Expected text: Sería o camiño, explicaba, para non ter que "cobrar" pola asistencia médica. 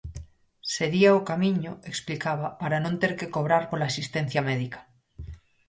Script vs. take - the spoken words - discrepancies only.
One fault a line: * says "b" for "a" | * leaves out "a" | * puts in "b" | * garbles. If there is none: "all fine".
all fine